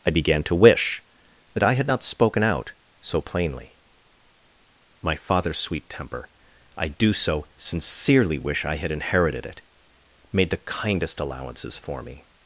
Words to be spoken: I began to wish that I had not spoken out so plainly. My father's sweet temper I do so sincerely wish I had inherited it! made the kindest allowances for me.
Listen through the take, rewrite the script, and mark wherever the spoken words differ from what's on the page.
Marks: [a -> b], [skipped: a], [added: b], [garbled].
I began to wish that I had not spoken out so plainly. My father's sweet temper I do so sincerely wish I had inherited it! made the kindest allowances for me.